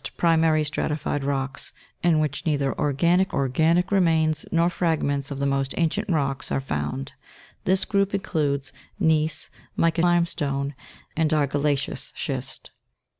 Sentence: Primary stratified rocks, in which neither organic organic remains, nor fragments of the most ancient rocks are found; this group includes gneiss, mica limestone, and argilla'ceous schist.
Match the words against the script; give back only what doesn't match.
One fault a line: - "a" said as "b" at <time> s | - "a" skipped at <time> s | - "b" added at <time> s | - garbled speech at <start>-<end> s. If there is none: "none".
none